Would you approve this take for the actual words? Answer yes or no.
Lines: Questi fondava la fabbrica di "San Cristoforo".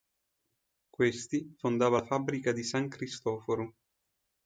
yes